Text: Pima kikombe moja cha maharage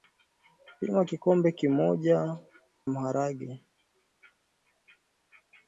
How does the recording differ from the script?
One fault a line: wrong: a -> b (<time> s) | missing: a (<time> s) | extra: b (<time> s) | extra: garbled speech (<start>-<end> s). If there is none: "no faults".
missing: cha (2.4 s)